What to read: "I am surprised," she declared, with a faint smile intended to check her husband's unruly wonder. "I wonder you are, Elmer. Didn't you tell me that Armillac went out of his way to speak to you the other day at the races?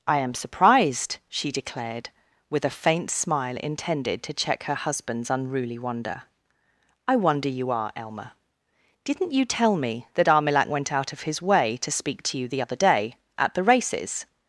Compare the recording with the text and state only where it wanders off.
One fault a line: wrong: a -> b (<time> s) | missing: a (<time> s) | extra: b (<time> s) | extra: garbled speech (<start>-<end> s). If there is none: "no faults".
no faults